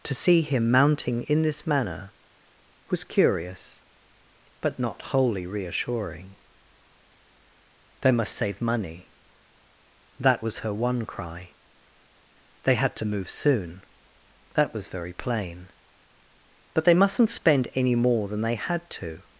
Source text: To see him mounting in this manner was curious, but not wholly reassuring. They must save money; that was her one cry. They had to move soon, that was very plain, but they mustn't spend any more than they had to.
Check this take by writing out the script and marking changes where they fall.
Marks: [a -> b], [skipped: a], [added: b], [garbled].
To see him mounting in this manner was curious, but not wholly reassuring. They must save money; that was her one cry. They had to move soon, that was very plain, but they mustn't spend any more than they had to.